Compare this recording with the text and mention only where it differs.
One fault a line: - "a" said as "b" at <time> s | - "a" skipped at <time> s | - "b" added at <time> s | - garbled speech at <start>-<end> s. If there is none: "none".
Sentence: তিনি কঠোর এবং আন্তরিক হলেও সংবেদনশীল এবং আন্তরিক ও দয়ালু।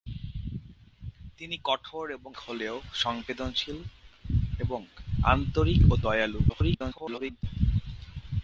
- "আন্তরিক" skipped at 2.3 s
- garbled speech at 6.5-7.4 s